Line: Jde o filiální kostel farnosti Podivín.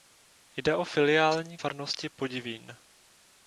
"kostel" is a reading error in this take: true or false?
true